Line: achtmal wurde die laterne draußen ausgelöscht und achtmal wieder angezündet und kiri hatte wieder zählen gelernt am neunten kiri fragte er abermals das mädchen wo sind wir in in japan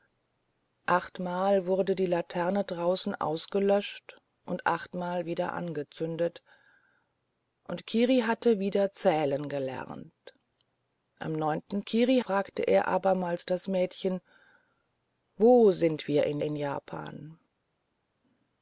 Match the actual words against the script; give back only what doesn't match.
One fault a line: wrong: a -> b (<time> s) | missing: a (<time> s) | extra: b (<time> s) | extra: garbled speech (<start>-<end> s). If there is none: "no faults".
no faults